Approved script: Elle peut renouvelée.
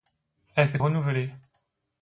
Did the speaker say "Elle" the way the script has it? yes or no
yes